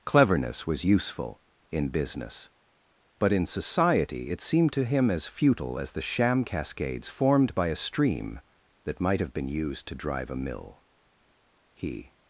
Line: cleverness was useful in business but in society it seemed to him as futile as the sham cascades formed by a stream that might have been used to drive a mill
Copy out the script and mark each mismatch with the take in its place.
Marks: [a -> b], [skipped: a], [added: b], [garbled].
cleverness was useful in business but in society it seemed to him as futile as the sham cascades formed by a stream that might have been used to drive a mill [added: he]